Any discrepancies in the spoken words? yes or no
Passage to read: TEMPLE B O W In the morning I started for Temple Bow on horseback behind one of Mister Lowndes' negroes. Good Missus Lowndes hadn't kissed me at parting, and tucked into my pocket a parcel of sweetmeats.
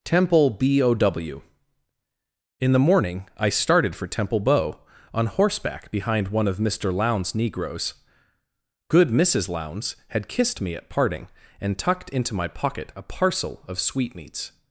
yes